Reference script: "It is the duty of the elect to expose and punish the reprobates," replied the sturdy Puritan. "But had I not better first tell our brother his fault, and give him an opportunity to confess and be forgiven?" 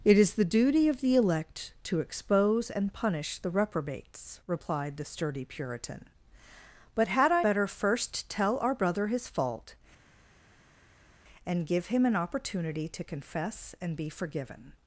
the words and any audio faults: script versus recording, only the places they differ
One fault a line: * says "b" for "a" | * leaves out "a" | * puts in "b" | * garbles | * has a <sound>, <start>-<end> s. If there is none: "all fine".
* leaves out "not"